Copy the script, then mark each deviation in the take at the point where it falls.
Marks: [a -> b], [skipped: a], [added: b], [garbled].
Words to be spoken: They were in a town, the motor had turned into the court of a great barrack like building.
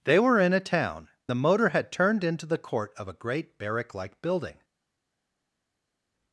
They were in a town, the motor had turned into the court of a great barrack like building.